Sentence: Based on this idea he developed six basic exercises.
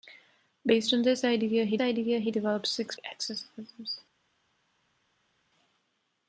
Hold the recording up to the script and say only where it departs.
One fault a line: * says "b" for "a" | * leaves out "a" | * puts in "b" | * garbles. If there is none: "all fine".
* puts in "idea he"
* leaves out "basic"